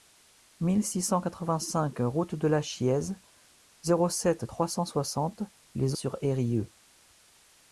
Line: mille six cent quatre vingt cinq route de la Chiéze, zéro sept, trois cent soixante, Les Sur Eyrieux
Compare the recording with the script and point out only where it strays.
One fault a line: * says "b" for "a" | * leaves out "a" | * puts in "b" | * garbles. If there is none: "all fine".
all fine